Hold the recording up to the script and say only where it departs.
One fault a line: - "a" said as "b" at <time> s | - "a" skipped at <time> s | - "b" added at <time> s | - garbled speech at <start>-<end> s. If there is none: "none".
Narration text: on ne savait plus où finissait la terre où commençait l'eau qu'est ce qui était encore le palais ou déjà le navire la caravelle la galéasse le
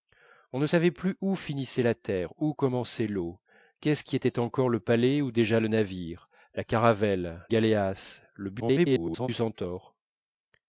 - "la" skipped at 7.4 s
- garbled speech at 8.6-9.3 s